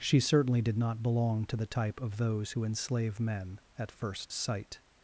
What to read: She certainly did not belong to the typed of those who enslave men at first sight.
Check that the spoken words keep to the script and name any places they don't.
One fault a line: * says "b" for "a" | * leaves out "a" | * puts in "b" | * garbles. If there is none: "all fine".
* says "type" for "typed"